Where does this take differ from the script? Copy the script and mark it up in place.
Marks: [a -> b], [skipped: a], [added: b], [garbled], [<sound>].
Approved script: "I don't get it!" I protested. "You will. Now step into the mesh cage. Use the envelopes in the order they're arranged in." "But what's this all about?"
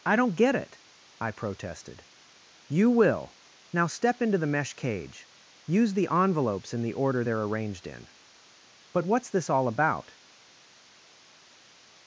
"I don't get it!" I protested. "You will. Now step into the mesh cage. Use the envelopes in the order they're arranged in." "But what's this all about?"